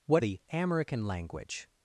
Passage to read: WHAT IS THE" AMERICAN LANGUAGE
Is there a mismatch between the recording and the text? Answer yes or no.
yes